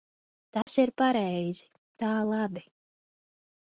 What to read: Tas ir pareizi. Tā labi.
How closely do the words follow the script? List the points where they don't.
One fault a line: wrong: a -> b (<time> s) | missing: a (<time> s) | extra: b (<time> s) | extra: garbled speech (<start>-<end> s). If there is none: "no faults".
no faults